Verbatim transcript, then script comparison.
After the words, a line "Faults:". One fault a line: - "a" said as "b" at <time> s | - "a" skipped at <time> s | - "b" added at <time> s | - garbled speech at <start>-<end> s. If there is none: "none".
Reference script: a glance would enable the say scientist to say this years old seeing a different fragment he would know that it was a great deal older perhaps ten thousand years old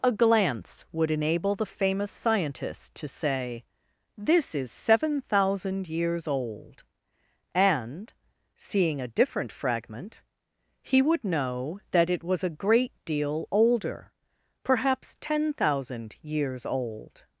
a glance would enable the famous scientist to say this is seven thousand years old and seeing a different fragment he would know that it was a great deal older perhaps ten thousand years old
Faults:
- "say" said as "famous" at 1.6 s
- "is seven thousand" added at 4.5 s
- "and" added at 7.5 s